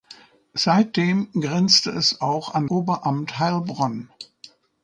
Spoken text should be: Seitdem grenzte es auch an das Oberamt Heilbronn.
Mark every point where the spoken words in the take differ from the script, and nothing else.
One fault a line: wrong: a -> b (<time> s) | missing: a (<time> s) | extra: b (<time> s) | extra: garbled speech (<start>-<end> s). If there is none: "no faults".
missing: das (2.6 s)